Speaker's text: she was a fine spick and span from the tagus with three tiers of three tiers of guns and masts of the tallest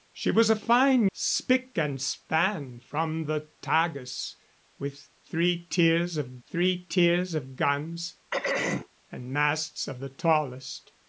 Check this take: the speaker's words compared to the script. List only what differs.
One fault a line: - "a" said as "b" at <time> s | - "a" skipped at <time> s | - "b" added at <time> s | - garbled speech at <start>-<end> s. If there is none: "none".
none